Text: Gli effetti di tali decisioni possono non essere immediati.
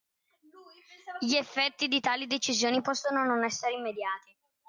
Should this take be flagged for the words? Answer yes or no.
no